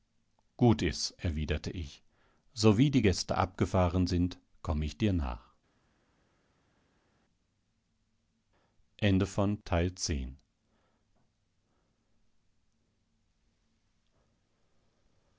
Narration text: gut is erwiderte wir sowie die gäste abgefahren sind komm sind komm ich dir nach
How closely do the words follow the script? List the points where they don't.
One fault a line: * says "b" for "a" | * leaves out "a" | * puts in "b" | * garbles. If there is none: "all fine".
* says "ich" for "wir"
* leaves out "sind komm"